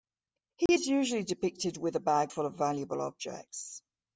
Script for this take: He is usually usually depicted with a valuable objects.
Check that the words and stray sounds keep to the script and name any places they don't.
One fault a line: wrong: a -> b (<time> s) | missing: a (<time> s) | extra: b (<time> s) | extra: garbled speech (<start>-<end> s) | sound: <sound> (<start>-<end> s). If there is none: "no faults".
sound: dropout (0.7-0.7 s)
missing: usually (1.2 s)
extra: bag full of (2.0 s)